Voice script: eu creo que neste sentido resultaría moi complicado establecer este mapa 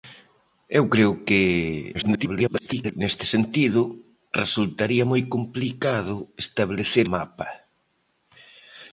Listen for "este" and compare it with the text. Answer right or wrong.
wrong